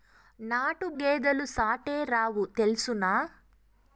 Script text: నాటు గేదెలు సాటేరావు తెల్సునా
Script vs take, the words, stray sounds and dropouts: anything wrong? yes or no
no